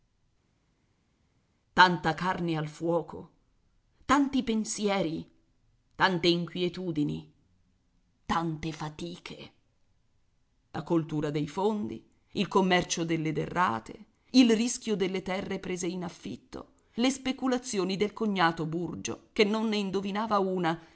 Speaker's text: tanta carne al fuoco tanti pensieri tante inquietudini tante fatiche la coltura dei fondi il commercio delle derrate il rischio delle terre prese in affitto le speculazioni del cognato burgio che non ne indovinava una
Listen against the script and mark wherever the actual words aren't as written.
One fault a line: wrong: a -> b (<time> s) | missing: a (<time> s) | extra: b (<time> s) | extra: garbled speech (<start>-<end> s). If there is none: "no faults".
no faults